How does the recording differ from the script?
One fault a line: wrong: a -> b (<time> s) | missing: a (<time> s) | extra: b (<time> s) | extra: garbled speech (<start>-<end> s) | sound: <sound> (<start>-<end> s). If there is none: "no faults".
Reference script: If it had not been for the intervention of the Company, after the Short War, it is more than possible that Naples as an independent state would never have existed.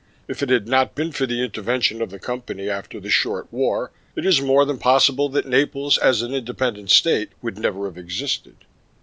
no faults